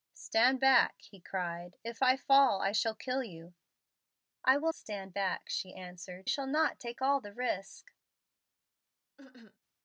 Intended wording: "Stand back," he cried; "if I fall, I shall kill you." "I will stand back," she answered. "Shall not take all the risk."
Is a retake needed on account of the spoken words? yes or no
no